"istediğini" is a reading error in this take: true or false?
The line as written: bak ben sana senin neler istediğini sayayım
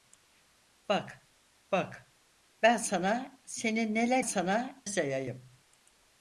true